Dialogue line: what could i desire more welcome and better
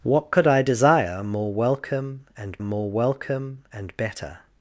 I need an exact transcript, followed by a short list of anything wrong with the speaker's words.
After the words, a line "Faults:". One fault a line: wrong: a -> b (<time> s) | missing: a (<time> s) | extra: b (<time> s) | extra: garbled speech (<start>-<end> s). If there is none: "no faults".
what could i desire more welcome and more welcome and better
Faults:
extra: more welcome and (2.6 s)